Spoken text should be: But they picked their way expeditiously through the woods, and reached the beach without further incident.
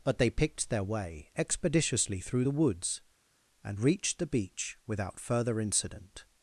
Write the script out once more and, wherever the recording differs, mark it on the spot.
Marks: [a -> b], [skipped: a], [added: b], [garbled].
But they picked their way expeditiously through the woods, and reached the beach without further incident.